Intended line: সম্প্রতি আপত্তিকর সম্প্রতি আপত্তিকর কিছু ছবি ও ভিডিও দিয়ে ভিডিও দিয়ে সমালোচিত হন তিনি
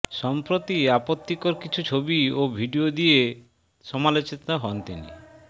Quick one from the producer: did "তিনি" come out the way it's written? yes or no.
yes